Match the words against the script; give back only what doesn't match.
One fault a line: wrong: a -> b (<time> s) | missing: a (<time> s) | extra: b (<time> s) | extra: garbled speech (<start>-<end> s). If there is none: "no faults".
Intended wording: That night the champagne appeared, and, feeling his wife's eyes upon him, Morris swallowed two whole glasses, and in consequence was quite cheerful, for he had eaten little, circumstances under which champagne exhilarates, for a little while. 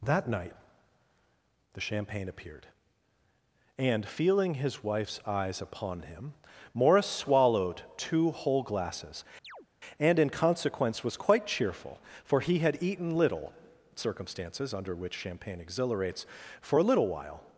no faults